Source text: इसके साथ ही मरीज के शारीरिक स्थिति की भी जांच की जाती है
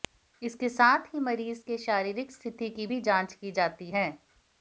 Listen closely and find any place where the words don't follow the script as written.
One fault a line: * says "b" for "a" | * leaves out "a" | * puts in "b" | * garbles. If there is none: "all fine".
all fine